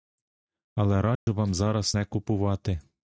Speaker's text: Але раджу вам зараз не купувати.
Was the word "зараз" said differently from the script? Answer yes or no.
no